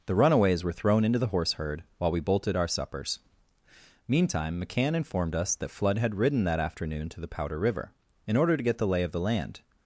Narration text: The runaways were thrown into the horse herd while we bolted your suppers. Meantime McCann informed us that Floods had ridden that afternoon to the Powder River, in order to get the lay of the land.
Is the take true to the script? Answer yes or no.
no